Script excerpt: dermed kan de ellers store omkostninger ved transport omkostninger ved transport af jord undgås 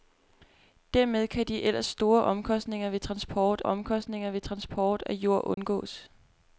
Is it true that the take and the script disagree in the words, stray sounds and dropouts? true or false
true